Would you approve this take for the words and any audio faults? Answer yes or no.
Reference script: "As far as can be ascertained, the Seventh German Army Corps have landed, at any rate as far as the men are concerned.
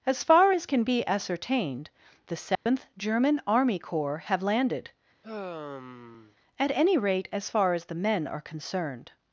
no